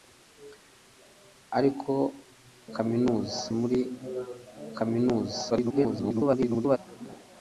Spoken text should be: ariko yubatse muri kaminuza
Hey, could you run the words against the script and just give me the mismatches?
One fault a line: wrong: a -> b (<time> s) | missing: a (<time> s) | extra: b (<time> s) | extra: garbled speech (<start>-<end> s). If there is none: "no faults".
wrong: yubatse -> kaminuza (2.7 s)
extra: garbled speech (5.5-6.8 s)